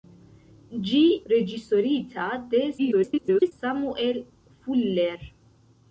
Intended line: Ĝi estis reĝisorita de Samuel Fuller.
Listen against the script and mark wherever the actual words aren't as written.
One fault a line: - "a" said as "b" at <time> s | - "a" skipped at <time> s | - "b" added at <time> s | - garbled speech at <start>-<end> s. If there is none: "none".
- "estis" skipped at 1.0 s
- garbled speech at 2.8-3.5 s